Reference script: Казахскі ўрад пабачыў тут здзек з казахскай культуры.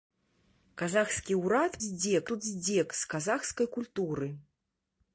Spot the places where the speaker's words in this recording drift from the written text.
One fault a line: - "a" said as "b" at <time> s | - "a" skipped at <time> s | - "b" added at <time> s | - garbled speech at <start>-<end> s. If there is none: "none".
- "пабачыў" said as "здзек" at 1.9 s